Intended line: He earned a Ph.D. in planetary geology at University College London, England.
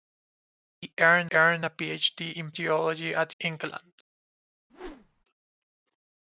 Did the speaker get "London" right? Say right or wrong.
wrong